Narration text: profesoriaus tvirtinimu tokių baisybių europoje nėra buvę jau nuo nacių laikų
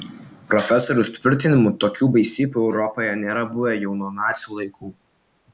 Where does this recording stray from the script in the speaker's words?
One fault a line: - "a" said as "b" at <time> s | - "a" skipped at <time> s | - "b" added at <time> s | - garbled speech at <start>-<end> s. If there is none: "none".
none